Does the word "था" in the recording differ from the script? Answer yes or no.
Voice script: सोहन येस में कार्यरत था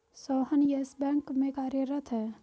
yes